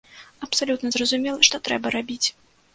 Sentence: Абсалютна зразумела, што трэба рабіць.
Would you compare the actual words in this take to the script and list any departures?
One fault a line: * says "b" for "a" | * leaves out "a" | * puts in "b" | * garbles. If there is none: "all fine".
all fine